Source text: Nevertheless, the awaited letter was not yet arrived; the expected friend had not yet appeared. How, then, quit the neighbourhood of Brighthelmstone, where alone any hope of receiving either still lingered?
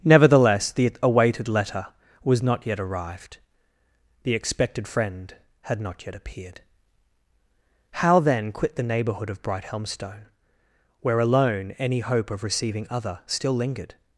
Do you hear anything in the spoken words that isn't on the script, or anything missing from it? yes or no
yes